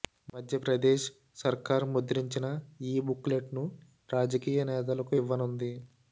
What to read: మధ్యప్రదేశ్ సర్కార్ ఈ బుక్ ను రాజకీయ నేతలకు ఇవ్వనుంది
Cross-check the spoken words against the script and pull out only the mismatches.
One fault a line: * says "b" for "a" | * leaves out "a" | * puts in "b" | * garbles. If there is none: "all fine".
* puts in "ముద్రించిన"
* puts in "లెట్"